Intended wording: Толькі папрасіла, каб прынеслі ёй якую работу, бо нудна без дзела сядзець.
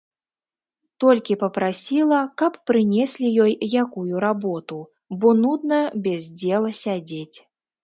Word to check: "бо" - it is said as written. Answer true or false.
true